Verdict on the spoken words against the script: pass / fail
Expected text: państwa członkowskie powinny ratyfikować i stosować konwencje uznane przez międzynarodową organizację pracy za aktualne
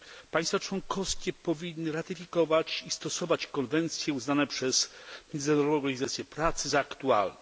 pass